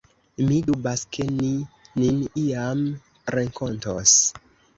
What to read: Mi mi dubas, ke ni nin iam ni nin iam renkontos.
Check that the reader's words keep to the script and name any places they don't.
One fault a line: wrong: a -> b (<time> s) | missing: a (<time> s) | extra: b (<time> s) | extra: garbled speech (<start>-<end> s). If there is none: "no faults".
missing: mi (0.6 s)
missing: ni nin iam (2.8 s)